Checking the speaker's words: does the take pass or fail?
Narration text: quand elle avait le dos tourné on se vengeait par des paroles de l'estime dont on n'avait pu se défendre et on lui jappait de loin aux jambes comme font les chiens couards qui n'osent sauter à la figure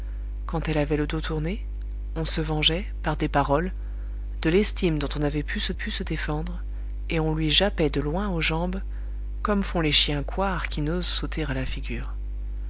fail